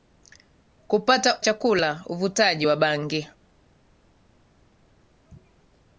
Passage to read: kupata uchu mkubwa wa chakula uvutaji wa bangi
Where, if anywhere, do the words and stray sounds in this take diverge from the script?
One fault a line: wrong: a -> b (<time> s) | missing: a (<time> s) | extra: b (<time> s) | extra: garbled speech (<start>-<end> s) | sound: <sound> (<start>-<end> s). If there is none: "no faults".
missing: uchu mkubwa wa (1.4 s)